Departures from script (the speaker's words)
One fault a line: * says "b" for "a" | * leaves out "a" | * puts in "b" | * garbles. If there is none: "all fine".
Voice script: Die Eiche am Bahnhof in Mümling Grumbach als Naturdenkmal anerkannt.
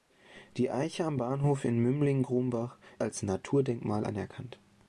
all fine